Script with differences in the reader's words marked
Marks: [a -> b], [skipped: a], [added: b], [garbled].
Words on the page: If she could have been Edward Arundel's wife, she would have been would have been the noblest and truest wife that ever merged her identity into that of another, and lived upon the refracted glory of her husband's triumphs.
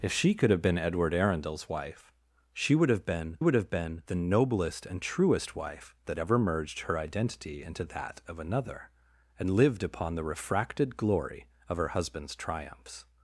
If she could have been Edward Arundel's wife, she would have been would have been the noblest and truest wife that ever merged her identity into that of another, and lived upon the refracted glory of her husband's triumphs.